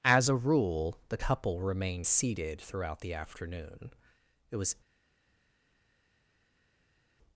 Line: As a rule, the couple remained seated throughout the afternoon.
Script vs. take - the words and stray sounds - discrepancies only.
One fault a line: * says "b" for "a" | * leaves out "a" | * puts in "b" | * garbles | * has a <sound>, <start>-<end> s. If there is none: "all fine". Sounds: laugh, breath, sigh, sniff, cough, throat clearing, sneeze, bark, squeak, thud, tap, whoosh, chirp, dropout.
* puts in "It was"